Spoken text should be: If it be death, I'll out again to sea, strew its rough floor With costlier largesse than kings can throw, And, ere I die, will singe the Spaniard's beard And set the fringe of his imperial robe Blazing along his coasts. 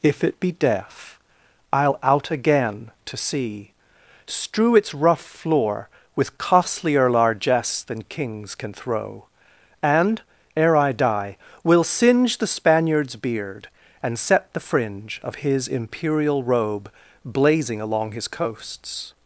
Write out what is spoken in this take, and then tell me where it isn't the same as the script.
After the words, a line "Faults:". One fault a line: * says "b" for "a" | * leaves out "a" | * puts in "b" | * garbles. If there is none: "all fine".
If it be death, I'll out again to sea, strew its rough floor With costlier largesse than kings can throw, And, ere I die, will singe the Spaniard's beard And set the fringe of his imperial robe Blazing along his coasts.
Faults:
all fine